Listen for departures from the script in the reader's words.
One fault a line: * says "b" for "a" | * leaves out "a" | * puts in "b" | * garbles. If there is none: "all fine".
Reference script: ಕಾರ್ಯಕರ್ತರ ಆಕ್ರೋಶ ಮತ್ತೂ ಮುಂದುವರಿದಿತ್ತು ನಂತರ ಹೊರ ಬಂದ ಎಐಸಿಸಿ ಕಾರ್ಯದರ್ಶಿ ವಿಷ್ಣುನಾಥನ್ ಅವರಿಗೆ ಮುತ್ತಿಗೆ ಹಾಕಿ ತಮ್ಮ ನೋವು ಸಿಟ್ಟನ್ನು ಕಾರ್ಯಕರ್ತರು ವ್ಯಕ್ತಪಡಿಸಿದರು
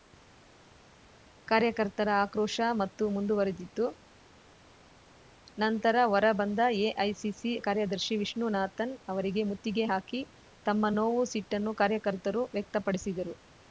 all fine